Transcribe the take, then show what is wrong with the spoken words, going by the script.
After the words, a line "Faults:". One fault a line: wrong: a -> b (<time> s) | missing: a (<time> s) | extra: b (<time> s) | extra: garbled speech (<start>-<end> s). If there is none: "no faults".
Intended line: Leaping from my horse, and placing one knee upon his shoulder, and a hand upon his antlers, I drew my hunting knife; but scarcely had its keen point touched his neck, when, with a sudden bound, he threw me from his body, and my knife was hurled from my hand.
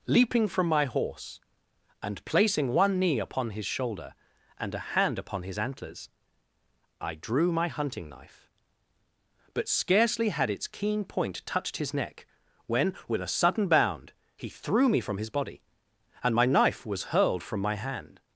Leaping from my horse, and placing one knee upon his shoulder, and a hand upon his antlers, I drew my hunting knife; but scarcely had its keen point touched his neck, when, with a sudden bound, he threw me from his body, and my knife was hurled from my hand.
Faults:
no faults